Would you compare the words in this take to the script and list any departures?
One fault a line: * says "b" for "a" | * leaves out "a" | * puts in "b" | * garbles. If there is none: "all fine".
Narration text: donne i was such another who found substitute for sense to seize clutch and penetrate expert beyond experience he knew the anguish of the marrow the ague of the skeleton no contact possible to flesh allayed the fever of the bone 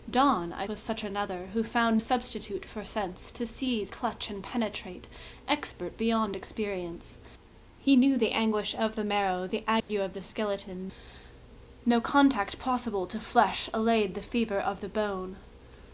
all fine